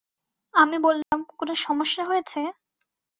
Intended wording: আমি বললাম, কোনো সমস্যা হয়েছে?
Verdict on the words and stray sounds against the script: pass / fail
fail